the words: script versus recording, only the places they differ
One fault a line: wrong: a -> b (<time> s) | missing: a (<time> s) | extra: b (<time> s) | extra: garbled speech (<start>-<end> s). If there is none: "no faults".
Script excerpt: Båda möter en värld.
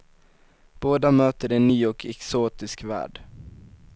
extra: ny och exotisk (1.6 s)